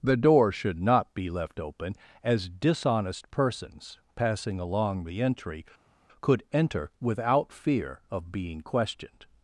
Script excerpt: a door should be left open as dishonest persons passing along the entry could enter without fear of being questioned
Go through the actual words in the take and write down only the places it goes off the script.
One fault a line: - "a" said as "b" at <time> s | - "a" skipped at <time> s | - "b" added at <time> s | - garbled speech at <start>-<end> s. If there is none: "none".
- "a" said as "the" at 0.0 s
- "not" added at 0.8 s